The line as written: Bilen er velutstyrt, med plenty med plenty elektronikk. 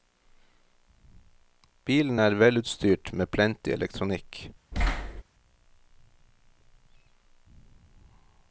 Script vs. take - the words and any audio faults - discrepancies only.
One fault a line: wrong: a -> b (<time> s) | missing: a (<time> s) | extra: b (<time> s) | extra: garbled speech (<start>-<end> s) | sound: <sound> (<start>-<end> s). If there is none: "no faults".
missing: med plenty (3.7 s)
sound: thud (4.7-5.2 s)